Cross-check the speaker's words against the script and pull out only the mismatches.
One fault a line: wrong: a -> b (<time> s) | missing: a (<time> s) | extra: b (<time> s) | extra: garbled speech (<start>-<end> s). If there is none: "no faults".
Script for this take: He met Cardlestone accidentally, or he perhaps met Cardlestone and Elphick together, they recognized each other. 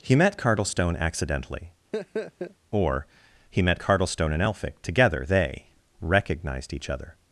missing: perhaps (3.6 s)